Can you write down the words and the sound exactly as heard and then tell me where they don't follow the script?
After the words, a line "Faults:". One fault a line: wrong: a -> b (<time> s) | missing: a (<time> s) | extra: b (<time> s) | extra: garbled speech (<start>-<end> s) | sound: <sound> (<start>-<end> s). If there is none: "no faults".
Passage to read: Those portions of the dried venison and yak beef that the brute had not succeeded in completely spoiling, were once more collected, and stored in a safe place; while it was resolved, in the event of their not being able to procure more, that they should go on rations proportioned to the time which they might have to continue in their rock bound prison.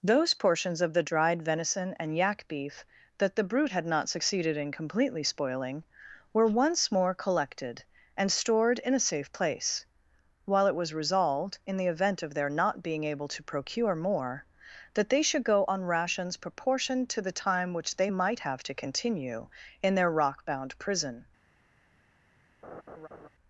Those portions of the dried venison and yak beef that the brute had not succeeded in completely spoiling, were once more collected, and stored in a safe place; while it was resolved, in the event of their not being able to procure more, that they should go on rations proportioned to the time which they might have to continue in their rock bound prison.
Faults:
sound: laugh (22.6-23.3 s)